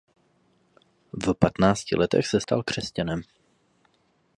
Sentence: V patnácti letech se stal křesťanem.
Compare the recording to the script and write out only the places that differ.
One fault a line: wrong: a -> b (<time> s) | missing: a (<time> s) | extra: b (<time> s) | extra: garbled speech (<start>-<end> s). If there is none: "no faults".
no faults